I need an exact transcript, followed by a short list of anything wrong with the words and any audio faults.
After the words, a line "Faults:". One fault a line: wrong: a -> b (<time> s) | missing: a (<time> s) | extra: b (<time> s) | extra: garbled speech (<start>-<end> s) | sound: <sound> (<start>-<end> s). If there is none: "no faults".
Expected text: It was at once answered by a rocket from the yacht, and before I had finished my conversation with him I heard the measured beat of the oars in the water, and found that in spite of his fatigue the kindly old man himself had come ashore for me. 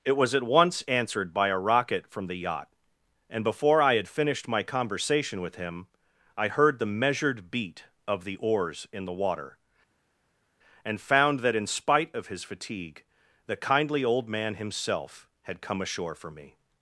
It was at once answered by a rocket from the yacht, and before I had finished my conversation with him I heard the measured beat of the oars in the water, and found that in spite of his fatigue the kindly old man himself had come ashore for me.
Faults:
no faults